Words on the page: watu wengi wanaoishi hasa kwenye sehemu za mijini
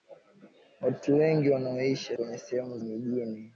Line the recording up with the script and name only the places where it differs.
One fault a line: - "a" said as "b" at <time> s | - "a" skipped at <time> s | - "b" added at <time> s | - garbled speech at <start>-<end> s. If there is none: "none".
- "hasa" skipped at 2.1 s
- "za" skipped at 2.8 s